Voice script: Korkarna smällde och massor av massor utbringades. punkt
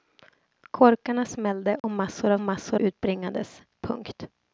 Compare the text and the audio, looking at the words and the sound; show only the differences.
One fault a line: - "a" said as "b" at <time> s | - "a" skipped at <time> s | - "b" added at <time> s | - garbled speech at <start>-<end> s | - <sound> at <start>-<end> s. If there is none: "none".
- dropout at 1.8-1.8 s